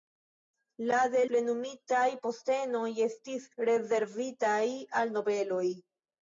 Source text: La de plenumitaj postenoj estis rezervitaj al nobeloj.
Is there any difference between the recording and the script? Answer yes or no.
no